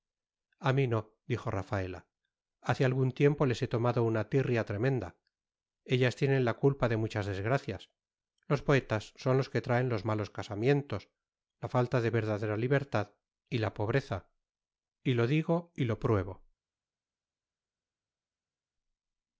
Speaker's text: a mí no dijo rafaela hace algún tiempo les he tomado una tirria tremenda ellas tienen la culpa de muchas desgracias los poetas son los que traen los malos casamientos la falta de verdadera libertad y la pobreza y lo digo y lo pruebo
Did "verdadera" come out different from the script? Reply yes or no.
no